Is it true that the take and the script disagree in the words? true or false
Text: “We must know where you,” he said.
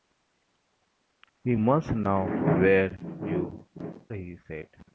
false